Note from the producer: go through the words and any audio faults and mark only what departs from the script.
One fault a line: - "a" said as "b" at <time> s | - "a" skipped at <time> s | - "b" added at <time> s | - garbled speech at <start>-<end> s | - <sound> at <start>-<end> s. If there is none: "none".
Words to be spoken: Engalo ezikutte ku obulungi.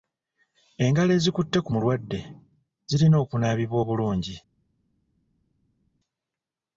- "mulwadde zirina okunaabibwa" added at 1.7 s